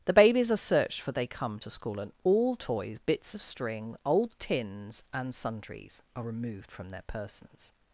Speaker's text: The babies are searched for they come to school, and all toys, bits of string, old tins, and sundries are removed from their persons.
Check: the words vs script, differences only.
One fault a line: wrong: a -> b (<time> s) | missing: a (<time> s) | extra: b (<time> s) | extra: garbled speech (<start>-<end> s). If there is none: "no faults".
no faults